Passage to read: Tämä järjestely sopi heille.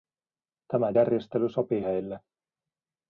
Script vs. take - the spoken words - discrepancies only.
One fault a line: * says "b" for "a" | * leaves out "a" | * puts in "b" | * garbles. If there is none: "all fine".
all fine